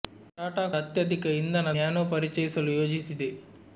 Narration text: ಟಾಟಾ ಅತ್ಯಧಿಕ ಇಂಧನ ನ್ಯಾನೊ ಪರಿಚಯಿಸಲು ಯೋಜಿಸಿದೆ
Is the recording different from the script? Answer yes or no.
no